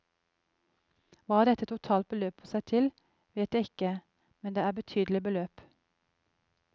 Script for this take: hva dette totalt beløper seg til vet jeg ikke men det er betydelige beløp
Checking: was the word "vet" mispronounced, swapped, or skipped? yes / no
no